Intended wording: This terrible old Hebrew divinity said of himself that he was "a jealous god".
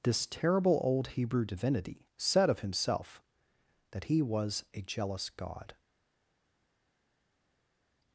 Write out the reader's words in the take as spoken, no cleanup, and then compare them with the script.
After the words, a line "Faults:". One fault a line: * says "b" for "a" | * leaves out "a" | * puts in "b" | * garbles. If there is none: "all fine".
This terrible old Hebrew divinity said of himself that he was "a jealous god".
Faults:
all fine